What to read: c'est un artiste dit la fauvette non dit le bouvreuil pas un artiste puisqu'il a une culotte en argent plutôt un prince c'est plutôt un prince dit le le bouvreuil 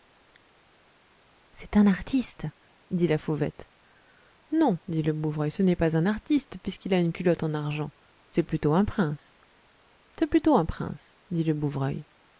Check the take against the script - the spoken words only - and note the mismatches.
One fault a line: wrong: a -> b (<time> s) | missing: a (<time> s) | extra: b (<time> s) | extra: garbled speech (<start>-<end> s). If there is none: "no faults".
extra: ce n'est (5.5 s)
extra: c'est (8.3 s)
missing: le (11.5 s)